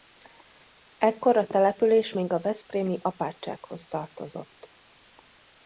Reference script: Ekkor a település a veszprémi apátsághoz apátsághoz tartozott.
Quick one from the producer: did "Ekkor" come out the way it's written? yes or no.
yes